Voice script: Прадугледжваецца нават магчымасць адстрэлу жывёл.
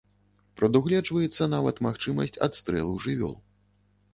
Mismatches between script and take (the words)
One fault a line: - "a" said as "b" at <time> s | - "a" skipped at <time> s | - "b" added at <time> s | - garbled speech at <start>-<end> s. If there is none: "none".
none